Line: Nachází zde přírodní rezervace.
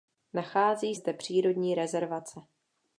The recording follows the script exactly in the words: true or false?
true